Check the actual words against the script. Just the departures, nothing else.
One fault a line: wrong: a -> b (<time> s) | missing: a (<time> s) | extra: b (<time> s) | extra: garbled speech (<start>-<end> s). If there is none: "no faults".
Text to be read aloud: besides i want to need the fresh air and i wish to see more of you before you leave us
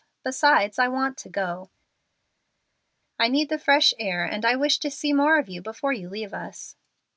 extra: go i (1.3 s)